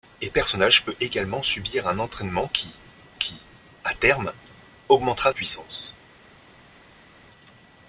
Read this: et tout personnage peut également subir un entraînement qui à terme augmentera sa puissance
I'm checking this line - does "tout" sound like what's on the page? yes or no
no